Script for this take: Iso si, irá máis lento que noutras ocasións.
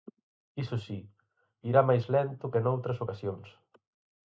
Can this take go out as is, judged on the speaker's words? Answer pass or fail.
pass